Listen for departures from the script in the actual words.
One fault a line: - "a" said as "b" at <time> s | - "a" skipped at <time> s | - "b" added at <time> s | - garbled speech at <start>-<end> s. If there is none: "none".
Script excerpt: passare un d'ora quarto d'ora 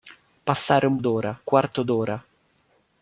none